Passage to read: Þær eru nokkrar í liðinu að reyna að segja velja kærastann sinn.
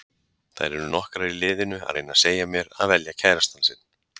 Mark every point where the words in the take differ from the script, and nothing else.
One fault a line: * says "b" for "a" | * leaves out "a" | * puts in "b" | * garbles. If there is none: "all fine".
* puts in "mér að"